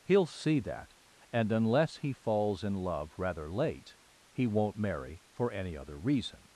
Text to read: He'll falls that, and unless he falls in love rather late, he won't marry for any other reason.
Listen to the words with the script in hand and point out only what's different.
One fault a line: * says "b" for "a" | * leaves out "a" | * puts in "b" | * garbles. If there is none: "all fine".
* says "see" for "falls"